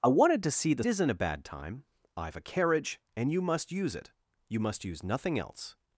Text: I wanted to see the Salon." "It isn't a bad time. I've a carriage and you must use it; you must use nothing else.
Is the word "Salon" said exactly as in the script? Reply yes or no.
no